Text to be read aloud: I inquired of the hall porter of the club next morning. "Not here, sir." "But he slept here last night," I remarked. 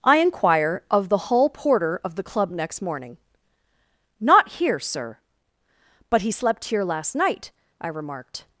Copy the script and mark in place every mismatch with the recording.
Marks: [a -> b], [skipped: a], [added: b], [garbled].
I [inquired -> inquire] of the hall porter of the club next morning. "Not here, sir." "But he slept here last night," I remarked.